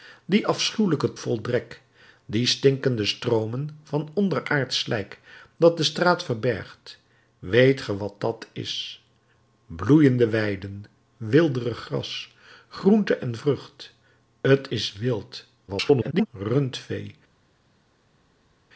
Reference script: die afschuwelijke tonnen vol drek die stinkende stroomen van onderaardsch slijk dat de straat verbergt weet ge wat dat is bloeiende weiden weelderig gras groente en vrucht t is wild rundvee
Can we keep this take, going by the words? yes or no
no